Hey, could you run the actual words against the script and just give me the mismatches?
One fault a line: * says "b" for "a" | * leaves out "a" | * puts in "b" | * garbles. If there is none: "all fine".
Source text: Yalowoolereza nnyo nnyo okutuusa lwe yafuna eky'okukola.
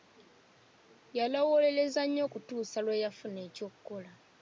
* leaves out "nnyo"